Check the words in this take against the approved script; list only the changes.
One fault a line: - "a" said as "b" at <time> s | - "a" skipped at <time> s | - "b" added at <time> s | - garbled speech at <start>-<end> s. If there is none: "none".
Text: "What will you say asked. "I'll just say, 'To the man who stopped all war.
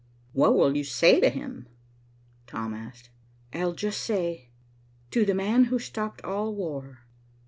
- "to him Tom" added at 1.2 s